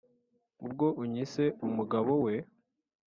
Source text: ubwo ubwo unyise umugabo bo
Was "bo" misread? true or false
true